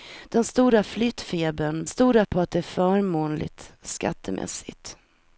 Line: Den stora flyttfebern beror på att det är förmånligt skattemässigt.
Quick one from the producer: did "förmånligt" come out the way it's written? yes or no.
yes